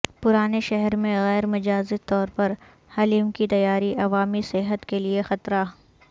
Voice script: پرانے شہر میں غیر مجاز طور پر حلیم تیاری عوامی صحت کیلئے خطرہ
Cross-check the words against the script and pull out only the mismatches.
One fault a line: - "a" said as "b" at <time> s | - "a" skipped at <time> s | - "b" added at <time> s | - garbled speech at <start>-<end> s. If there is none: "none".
- "کی" added at 3.3 s